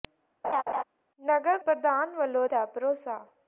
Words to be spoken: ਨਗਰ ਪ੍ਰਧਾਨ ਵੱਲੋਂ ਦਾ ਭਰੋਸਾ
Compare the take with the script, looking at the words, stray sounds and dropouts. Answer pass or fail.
fail